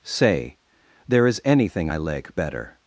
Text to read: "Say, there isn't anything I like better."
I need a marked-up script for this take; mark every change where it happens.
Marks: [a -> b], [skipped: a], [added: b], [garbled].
"Say, there [isn't -> is] anything I like better."